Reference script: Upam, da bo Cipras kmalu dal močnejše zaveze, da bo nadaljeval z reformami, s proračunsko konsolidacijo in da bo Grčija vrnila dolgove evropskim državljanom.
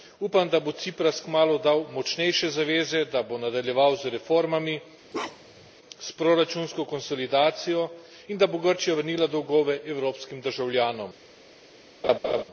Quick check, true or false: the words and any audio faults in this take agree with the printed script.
false